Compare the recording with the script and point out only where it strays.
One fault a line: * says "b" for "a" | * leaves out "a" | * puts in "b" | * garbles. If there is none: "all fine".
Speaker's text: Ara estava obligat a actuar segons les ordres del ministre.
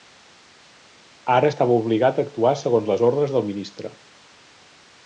all fine